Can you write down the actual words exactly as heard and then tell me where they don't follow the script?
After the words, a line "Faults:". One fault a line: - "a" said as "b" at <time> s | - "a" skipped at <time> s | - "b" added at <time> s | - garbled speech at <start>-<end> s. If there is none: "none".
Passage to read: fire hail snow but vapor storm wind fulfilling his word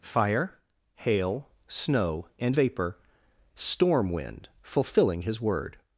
fire hail snow and vapor storm wind fulfilling his word
Faults:
- "but" said as "and" at 2.4 s